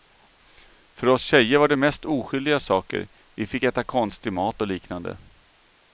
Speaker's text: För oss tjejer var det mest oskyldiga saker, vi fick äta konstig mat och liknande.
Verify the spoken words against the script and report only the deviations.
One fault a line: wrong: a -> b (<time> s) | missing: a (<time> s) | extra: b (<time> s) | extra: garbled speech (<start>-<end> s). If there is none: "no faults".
no faults